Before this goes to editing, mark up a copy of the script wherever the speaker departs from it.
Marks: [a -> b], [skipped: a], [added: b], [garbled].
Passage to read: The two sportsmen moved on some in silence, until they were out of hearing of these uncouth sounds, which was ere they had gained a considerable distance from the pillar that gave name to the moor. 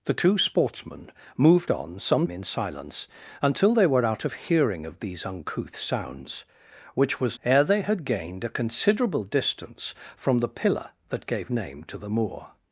The two sportsmen moved on some in silence, until they were out of hearing of these uncouth sounds, which was ere they had gained a considerable distance from the pillar that gave name to the moor.